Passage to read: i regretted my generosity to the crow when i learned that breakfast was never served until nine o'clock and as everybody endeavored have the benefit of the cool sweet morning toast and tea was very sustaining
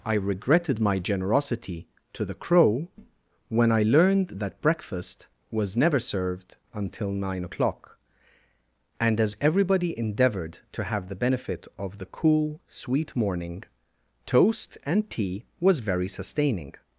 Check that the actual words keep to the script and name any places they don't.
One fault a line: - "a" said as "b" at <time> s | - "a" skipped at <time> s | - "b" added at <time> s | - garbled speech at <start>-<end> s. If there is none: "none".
- "to" added at 10.7 s